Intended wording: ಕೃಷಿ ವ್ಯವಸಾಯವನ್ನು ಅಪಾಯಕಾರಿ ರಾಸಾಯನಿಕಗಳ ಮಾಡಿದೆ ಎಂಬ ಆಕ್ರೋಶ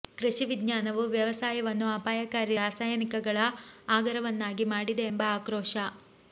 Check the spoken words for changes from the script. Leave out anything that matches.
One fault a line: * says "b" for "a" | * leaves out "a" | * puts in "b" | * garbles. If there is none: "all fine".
* puts in "ವಿಜ್ಞಾನವು"
* puts in "ಆಗರವನ್ನಾಗಿ"